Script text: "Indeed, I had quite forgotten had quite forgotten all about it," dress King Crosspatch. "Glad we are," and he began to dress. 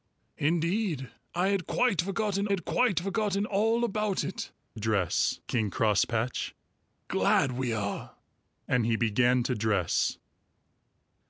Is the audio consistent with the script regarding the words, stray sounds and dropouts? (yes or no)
yes